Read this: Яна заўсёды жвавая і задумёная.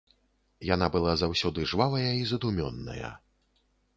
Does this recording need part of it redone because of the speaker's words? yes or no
yes